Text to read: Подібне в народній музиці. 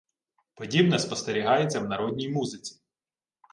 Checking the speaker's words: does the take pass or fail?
fail